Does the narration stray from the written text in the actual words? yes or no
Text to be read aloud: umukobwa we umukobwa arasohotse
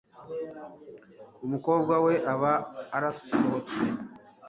yes